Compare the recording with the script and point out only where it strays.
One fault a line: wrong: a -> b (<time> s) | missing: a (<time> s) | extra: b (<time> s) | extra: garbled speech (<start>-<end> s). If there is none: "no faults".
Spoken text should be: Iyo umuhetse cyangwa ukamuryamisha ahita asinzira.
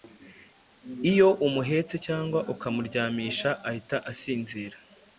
no faults